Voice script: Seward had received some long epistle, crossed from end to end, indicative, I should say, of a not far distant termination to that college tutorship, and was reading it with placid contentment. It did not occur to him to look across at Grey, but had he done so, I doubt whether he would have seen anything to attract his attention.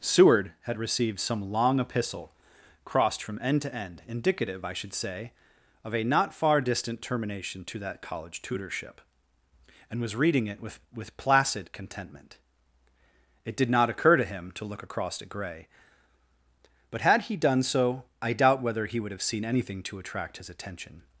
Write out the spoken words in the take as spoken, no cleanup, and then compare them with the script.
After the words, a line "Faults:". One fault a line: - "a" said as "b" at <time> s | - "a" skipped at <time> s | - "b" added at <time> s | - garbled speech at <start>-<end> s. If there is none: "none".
Seward had received some long epistle, crossed from end to end, indicative, I should say, of a not far distant termination to that college tutorship, and was reading it with with placid contentment. It did not occur to him to look across at Grey, but had he done so, I doubt whether he would have seen anything to attract his attention.
Faults:
- "with" added at 10.9 s